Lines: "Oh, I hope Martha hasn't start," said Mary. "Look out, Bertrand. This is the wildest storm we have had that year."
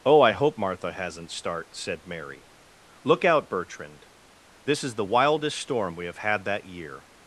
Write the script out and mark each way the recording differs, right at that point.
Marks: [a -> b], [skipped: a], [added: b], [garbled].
"Oh, I hope Martha hasn't start," said Mary. "Look out, Bertrand. This is the wildest storm we have had that year."